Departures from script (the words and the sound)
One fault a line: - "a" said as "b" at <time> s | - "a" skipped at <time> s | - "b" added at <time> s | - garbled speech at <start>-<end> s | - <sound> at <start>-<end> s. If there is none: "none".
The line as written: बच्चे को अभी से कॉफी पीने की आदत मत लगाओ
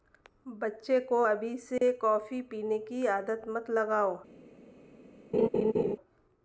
- dropout at 1.8-1.8 s
- laugh at 5.3-6.0 s